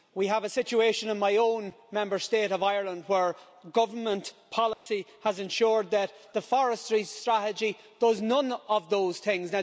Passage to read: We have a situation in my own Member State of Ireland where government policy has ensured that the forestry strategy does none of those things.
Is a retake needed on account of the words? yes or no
no